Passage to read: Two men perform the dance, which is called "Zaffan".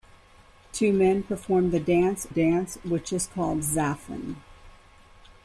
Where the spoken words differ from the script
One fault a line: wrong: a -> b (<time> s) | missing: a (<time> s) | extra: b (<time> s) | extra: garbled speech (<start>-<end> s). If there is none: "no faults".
extra: dance (2.3 s)